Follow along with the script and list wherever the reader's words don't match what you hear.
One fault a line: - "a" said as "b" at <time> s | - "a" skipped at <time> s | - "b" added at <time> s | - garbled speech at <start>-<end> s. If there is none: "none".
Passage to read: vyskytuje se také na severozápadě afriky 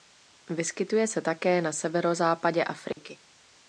none